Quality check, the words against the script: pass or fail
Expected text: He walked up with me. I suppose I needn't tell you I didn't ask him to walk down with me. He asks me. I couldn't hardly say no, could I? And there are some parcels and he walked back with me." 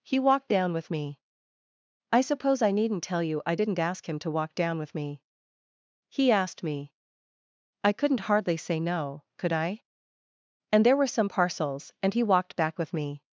fail